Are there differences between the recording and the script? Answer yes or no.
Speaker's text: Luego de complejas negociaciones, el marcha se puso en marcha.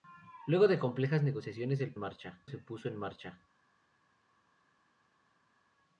no